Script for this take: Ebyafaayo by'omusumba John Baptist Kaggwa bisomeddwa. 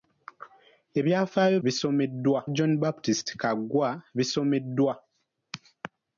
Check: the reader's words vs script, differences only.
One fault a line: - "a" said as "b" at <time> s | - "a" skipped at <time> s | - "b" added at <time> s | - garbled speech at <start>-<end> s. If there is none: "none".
- "by'omusumba" said as "bisomeddwa" at 1.6 s